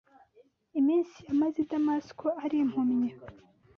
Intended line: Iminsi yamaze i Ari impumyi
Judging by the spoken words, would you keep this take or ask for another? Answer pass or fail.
fail